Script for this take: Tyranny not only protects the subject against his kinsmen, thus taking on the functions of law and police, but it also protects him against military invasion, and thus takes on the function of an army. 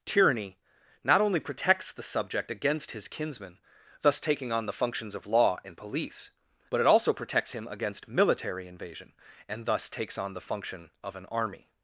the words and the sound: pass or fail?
pass